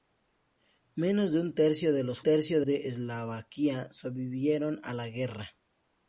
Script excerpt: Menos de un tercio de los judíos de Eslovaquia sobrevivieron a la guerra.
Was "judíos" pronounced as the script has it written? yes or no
no